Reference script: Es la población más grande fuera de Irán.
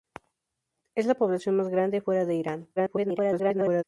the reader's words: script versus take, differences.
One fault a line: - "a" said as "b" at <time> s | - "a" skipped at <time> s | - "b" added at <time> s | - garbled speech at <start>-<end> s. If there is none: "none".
- garbled speech at 2.8-3.8 s